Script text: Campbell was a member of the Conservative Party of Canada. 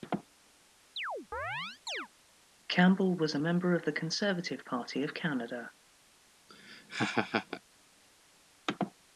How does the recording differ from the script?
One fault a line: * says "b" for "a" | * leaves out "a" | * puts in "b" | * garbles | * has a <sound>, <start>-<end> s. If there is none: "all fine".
* has a chirp, 1.0-2.1 s
* has a laugh, 6.5-7.6 s